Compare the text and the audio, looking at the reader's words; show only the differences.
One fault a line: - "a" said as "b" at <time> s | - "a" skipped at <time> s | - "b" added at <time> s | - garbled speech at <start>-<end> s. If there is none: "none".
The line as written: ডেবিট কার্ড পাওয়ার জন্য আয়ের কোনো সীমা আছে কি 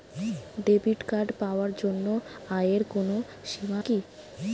- "আছে" skipped at 3.8 s